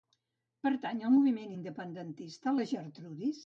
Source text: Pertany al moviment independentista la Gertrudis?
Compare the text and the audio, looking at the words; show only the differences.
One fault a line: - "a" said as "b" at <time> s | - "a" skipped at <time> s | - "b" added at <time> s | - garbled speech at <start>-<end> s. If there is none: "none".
none